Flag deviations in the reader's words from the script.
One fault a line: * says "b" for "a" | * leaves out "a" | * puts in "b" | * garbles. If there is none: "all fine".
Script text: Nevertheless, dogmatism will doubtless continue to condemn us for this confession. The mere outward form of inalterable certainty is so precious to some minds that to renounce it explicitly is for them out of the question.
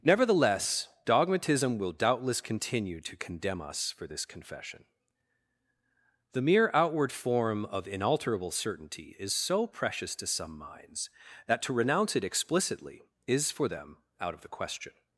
all fine